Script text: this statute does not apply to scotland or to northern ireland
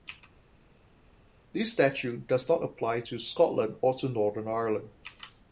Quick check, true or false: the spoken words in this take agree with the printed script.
true